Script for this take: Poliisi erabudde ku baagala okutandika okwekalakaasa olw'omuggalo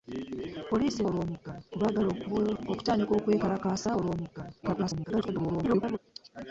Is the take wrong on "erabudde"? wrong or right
wrong